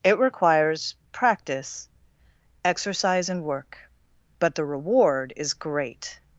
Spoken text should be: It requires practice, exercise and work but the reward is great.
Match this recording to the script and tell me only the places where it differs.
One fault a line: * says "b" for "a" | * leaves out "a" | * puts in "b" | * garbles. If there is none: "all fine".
all fine